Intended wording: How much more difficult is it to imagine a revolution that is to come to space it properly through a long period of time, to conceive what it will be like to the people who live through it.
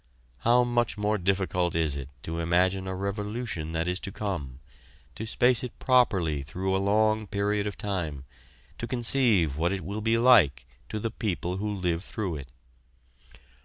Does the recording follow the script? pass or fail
pass